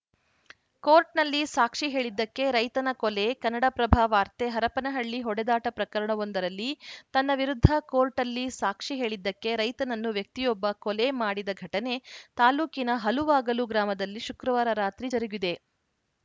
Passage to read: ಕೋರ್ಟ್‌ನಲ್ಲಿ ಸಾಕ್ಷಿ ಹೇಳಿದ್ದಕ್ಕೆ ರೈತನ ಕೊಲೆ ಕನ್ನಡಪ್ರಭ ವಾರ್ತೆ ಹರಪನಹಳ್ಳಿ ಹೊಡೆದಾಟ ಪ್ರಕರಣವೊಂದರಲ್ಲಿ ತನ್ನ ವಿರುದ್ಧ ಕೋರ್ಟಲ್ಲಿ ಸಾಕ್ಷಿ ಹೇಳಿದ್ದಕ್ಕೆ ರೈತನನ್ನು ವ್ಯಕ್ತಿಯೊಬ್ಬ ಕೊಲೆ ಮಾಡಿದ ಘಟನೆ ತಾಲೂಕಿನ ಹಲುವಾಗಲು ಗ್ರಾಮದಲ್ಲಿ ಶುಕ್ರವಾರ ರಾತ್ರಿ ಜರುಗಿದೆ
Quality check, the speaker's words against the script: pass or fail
pass